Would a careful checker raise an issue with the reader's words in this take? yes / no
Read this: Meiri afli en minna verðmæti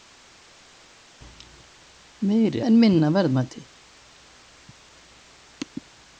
yes